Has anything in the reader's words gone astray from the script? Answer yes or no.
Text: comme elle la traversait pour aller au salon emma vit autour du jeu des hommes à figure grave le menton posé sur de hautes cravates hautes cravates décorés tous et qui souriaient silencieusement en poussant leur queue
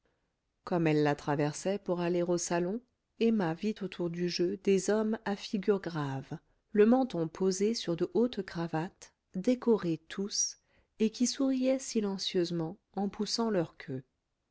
yes